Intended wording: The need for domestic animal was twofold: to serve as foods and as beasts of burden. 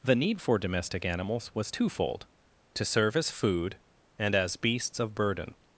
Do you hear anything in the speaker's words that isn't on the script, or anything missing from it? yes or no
yes